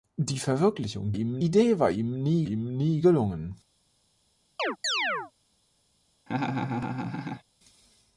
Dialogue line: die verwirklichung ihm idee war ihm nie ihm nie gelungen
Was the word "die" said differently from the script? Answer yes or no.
no